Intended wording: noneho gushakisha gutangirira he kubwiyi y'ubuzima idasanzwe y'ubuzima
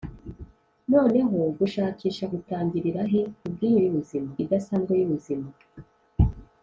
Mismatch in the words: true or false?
false